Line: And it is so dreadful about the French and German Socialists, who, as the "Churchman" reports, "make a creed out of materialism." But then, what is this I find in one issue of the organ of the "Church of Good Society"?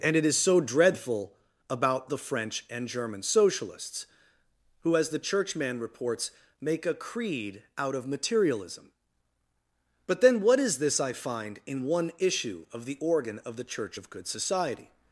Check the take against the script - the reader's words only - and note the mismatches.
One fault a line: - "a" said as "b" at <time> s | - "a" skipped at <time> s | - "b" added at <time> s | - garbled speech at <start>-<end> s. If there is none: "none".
none